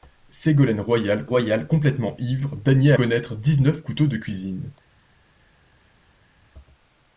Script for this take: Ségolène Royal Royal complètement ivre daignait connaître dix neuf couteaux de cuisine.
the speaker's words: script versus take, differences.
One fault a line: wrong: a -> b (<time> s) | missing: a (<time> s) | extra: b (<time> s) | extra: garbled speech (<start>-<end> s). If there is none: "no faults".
no faults